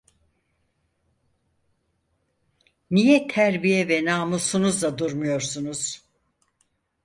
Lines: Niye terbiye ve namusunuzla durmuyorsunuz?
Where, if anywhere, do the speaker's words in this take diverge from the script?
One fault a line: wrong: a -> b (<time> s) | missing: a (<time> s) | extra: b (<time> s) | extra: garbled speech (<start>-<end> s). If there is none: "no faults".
no faults